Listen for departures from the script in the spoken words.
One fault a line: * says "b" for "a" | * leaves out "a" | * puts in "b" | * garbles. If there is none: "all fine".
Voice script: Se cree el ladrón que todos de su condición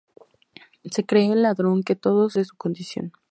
all fine